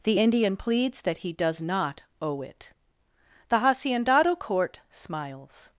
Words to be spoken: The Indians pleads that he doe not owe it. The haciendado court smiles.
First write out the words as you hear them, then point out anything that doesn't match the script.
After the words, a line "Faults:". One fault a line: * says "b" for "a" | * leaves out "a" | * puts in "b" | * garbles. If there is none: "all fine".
The Indian pleads that he does not owe it. The haciendado court smiles.
Faults:
* says "Indian" for "Indians"
* says "does" for "doe"